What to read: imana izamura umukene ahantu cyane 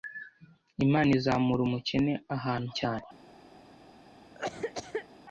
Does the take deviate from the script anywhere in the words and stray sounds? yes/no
yes